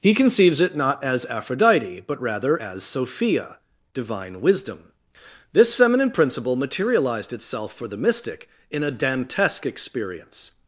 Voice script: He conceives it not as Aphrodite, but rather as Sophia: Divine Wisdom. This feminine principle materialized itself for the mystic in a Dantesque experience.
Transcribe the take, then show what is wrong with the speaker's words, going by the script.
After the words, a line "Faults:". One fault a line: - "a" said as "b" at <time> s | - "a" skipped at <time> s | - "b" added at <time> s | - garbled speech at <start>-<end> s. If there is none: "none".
He conceives it not as Aphrodite, but rather as Sophia: Divine Wisdom. This feminine principle materialized itself for the mystic in a Dantesque experience.
Faults:
none